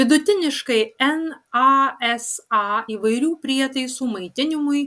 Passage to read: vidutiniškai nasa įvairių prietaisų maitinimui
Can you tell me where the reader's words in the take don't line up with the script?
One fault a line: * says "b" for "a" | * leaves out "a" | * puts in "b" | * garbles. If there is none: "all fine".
all fine